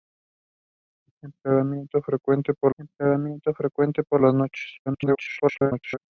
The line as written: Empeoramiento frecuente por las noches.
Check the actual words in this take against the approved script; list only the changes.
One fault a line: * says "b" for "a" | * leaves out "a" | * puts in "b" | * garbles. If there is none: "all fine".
* puts in "empeoramiento frecuente por"
* garbles